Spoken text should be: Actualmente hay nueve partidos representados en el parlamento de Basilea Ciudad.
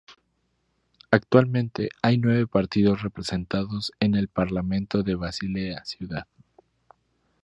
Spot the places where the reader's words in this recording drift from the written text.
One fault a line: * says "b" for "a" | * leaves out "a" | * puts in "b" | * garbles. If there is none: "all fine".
all fine